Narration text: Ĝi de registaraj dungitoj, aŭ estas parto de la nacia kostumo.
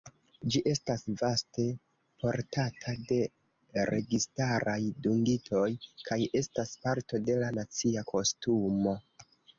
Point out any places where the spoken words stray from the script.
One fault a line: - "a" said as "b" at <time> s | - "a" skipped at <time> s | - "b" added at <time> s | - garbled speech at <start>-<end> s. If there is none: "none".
- "estas vaste portata" added at 0.7 s
- "aŭ" said as "kaj" at 6.1 s